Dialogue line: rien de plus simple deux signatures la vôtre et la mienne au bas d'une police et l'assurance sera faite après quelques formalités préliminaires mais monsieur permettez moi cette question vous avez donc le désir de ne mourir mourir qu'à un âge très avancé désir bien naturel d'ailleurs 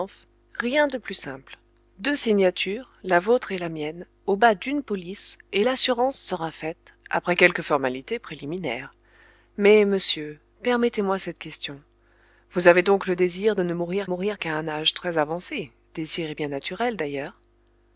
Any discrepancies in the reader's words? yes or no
no